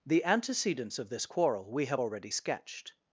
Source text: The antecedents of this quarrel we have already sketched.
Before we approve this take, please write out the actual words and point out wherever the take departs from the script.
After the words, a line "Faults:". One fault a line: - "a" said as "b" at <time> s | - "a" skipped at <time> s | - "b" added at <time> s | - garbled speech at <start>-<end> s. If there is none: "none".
The antecedents of this quarrel we have already sketched.
Faults:
none